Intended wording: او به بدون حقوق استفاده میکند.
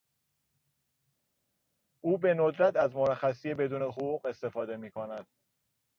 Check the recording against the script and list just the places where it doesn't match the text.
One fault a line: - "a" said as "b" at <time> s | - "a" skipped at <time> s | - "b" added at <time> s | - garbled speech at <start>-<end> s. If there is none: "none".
- "ندرت از مرخصی" added at 2.3 s